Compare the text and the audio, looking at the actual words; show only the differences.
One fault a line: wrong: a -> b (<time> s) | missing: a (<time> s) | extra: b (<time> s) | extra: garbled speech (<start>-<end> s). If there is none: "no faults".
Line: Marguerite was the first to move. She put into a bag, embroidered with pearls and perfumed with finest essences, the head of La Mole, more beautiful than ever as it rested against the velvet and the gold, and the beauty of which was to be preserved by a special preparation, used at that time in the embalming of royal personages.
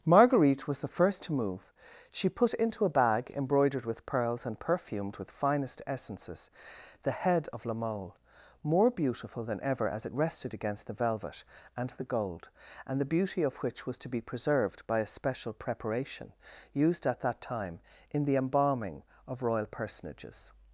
no faults